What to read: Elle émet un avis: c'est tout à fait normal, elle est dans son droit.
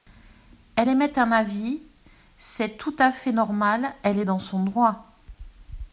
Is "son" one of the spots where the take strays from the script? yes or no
no